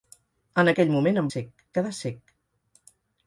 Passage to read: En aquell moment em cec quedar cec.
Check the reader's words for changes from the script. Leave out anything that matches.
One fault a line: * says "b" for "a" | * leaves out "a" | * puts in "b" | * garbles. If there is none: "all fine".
all fine